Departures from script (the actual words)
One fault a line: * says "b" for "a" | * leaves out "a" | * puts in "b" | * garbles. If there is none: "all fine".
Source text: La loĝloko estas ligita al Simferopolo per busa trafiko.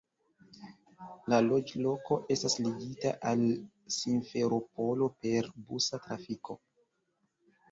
all fine